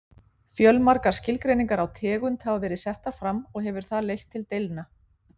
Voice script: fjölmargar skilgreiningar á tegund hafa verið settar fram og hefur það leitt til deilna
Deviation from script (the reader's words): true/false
false